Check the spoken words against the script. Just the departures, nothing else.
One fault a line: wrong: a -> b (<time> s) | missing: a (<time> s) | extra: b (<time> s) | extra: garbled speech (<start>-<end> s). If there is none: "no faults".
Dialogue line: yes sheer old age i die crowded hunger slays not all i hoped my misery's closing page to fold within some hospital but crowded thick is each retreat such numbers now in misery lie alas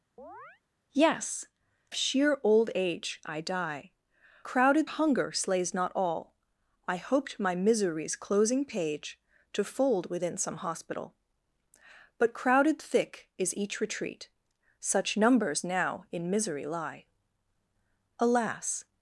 no faults